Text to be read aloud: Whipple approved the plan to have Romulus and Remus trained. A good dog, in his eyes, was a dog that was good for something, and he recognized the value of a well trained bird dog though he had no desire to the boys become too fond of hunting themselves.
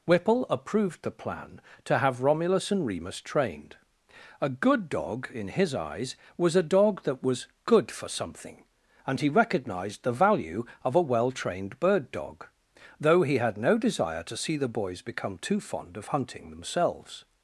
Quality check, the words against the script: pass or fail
fail